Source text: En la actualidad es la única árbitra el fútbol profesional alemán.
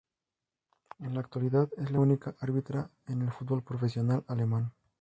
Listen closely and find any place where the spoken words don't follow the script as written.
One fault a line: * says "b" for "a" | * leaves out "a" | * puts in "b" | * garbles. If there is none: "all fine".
* puts in "en"